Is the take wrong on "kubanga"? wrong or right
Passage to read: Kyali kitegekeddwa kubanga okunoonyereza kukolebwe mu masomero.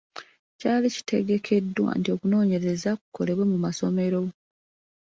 wrong